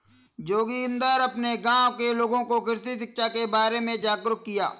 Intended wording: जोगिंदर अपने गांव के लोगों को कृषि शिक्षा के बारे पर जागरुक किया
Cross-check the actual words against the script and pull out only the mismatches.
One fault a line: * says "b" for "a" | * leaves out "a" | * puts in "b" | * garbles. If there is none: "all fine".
* says "में" for "पर"